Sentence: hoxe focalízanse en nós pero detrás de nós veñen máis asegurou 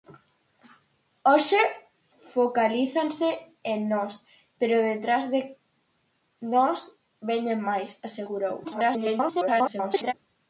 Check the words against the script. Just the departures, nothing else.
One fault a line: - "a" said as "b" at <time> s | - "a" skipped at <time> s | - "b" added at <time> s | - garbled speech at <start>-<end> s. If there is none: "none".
- garbled speech at 8.6-10.1 s